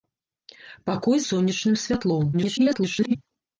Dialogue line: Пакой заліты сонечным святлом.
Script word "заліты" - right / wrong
wrong